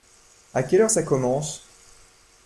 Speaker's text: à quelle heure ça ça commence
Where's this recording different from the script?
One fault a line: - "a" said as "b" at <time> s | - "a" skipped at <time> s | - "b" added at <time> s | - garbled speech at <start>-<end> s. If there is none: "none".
- "ça" skipped at 1.0 s